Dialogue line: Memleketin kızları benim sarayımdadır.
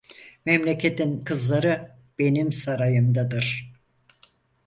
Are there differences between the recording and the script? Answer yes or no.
no